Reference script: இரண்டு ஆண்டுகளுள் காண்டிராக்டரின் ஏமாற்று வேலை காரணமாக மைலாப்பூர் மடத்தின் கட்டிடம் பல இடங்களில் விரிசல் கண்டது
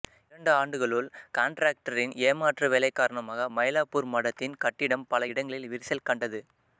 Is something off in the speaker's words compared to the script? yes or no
no